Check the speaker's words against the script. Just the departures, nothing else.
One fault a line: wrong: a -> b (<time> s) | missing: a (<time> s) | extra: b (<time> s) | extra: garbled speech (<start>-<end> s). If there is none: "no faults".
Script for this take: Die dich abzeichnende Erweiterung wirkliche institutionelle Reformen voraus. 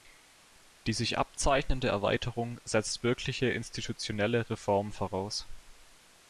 wrong: dich -> sich (0.9 s)
extra: setzt (2.6 s)